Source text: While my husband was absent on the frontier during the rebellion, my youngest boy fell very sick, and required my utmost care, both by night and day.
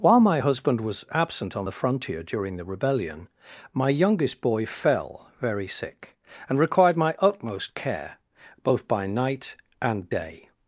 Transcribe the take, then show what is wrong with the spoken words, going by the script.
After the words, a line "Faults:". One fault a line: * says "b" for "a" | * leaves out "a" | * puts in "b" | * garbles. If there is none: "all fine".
While my husband was absent on the frontier during the rebellion, my youngest boy fell very sick, and required my utmost care, both by night and day.
Faults:
all fine